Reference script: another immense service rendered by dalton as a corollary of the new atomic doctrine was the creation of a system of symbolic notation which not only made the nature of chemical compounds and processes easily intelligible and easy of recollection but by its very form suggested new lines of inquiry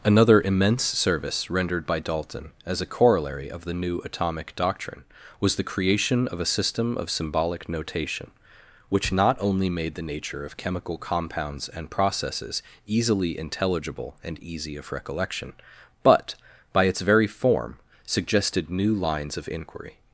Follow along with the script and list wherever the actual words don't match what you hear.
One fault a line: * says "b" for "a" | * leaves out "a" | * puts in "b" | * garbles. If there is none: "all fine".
all fine